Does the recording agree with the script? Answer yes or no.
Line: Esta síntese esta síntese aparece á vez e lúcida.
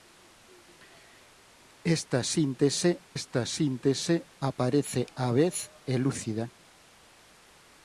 yes